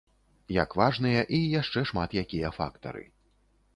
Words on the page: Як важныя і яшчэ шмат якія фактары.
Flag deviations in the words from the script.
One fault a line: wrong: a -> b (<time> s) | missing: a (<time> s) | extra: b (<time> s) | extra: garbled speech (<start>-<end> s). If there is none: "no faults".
no faults